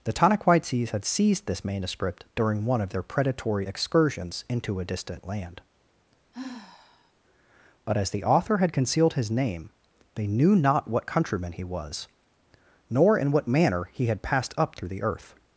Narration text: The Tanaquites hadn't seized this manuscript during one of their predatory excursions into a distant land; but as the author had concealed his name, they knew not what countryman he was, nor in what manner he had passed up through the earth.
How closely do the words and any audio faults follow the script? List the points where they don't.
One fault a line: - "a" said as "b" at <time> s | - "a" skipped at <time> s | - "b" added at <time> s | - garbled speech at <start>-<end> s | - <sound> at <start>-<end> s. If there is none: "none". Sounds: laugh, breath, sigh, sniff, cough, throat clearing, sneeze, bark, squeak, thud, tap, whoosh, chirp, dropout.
- "hadn't" said as "had" at 0.9 s
- sigh at 6.3-7.1 s